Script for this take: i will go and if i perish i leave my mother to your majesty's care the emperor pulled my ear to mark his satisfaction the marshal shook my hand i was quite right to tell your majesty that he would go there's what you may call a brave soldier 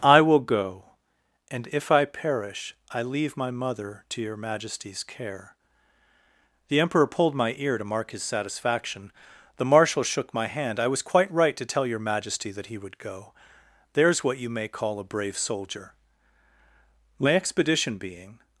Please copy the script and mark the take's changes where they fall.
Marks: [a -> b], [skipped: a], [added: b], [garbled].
i will go and if i perish i leave my mother to your majesty's care the emperor pulled my ear to mark his satisfaction the marshal shook my hand i was quite right to tell your majesty that he would go there's what you may call a brave soldier [added: my expedition being]